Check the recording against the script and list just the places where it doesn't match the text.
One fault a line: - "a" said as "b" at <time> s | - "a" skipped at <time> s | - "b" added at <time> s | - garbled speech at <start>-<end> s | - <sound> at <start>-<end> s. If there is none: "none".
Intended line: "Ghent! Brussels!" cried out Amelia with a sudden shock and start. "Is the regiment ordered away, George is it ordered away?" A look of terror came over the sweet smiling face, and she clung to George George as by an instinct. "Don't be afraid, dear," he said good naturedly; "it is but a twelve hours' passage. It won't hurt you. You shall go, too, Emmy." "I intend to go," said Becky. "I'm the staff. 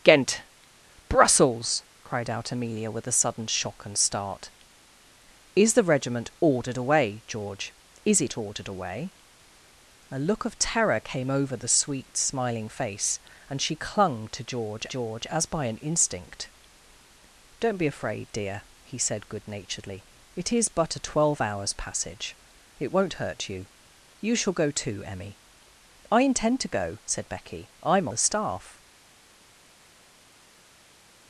none